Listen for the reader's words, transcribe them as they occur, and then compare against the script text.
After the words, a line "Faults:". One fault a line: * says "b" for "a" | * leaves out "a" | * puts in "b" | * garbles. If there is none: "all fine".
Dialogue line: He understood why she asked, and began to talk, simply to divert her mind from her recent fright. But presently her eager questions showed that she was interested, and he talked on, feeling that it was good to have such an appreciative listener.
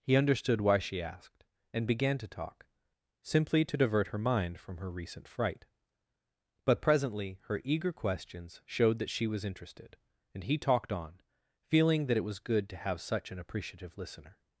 He understood why she asked, and began to talk, simply to divert her mind from her recent fright. But presently her eager questions showed that she was interested, and he talked on, feeling that it was good to have such an appreciative listener.
Faults:
all fine